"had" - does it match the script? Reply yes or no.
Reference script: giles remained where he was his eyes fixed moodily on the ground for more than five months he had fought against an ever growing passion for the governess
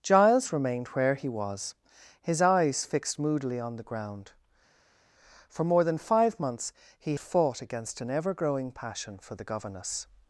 no